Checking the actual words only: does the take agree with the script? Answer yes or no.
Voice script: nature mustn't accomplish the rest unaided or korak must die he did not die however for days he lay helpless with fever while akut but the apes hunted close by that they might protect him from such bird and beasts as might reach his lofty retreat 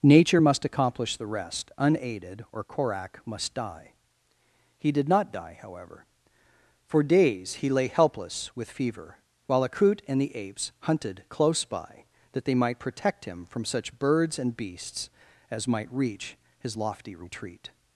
no